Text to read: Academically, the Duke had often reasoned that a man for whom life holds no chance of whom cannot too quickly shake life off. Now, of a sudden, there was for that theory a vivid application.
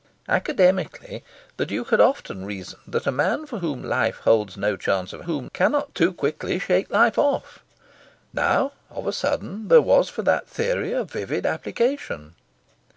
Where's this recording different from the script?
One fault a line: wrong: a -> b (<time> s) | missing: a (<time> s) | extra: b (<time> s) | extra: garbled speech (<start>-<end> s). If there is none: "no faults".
no faults